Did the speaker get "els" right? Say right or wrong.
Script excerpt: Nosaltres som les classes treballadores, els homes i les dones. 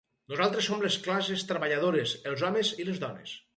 right